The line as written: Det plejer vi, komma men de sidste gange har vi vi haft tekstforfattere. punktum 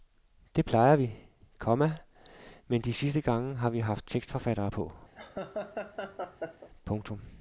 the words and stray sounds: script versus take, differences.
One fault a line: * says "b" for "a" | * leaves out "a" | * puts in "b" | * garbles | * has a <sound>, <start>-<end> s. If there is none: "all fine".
* leaves out "vi"
* puts in "på"
* has a laugh, 5.1-6.7 s